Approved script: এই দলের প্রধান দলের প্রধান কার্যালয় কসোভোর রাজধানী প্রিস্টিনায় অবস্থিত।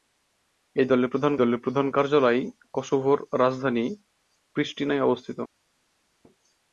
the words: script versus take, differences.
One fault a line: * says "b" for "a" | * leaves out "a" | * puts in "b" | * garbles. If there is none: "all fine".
all fine